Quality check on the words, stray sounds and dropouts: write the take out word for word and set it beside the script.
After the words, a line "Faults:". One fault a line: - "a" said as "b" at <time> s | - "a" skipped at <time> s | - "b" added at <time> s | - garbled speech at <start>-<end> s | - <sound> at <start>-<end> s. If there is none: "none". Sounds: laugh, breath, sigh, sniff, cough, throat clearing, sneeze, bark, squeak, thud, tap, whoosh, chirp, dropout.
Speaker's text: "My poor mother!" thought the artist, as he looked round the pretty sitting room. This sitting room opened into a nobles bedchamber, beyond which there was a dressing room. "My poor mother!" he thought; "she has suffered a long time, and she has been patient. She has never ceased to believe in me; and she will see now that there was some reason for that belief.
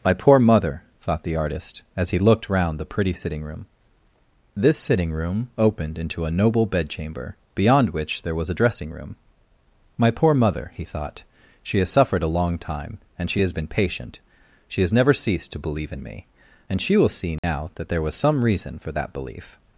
"My poor mother!" thought the artist, as he looked round the pretty sitting room. This sitting room opened into a noble bedchamber, beyond which there was a dressing room. "My poor mother!" he thought; "she has suffered a long time, and she has been patient. She has never ceased to believe in me; and she will see now that there was some reason for that belief.
Faults:
- "nobles" said as "noble" at 6.3 s
- dropout at 17.4-17.4 s